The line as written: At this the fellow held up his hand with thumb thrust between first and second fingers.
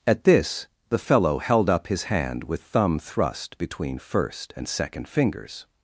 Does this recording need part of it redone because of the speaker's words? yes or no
no